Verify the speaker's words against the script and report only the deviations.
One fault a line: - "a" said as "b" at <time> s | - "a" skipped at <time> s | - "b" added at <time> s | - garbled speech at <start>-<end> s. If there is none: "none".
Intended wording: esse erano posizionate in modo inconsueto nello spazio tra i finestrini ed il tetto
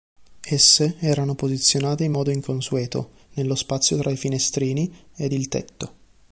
none